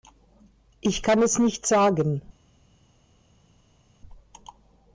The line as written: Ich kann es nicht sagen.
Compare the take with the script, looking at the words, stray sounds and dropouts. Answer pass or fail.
pass